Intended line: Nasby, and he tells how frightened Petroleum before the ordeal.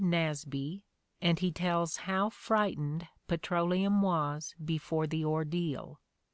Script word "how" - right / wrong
right